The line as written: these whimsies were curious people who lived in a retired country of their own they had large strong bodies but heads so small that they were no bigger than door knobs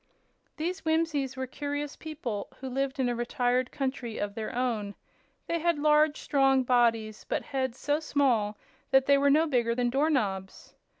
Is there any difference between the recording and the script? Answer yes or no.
no